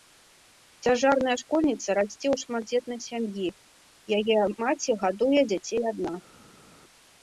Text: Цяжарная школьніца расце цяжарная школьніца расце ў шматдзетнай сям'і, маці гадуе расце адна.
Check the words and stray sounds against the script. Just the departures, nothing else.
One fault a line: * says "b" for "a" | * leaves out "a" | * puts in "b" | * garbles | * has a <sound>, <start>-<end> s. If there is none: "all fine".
* leaves out "цяжарная школьніца расце"
* puts in "яе"
* says "дзяцей" for "расце"